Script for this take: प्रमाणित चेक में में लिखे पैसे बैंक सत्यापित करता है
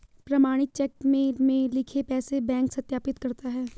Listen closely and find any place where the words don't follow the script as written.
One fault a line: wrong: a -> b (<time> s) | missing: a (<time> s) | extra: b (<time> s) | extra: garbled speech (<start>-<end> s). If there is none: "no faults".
no faults